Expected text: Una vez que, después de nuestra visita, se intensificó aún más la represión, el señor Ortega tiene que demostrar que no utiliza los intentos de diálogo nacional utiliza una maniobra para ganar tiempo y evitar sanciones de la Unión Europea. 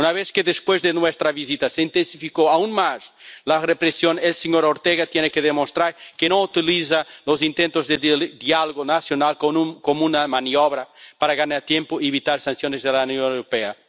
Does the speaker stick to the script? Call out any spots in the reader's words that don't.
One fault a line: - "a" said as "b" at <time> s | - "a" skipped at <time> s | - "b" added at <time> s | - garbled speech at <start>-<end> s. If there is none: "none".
- "utiliza" said as "como" at 9.4 s